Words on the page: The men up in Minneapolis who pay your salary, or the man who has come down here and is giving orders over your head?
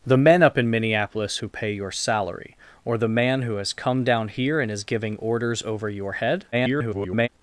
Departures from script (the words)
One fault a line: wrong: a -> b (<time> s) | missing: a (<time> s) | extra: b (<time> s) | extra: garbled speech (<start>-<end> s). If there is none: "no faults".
extra: garbled speech (6.5-7.3 s)